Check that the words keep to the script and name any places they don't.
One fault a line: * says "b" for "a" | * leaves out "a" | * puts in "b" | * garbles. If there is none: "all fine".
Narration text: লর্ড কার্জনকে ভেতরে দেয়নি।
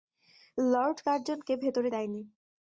all fine